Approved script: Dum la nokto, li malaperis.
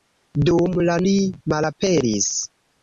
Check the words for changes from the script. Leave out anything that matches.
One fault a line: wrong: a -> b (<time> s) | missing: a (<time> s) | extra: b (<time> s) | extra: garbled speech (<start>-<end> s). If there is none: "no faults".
missing: nokto (0.9 s)